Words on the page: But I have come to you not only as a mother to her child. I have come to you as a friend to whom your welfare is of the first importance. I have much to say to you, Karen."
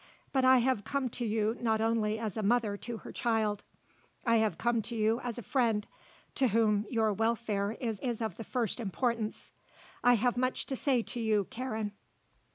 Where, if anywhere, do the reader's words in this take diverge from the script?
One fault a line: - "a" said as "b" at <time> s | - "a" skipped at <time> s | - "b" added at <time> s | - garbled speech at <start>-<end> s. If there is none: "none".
- "is" added at 7.9 s